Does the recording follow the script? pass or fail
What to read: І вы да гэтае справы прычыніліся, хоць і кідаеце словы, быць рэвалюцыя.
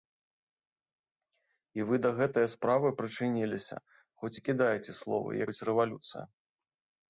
pass